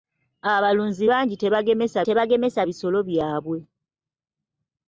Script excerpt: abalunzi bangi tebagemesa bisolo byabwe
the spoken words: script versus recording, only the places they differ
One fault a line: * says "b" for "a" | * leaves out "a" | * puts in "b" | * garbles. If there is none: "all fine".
* puts in "tebagemesa"